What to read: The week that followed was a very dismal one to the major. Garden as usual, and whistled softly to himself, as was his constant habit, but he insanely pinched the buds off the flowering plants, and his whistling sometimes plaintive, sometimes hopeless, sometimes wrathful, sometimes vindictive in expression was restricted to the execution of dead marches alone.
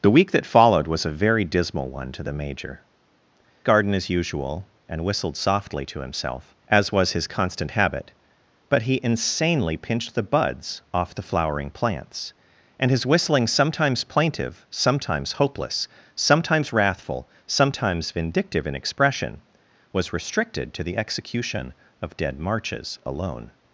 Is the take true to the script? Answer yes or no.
yes